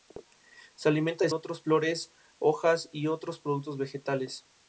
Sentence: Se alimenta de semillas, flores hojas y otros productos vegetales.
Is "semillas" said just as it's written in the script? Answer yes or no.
no